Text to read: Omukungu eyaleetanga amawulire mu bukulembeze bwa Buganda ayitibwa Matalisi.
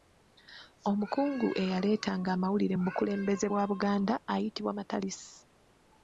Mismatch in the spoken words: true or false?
false